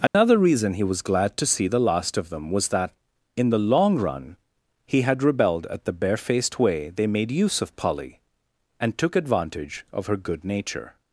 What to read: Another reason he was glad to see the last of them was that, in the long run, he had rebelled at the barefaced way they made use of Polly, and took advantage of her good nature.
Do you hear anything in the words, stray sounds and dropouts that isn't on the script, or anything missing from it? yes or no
yes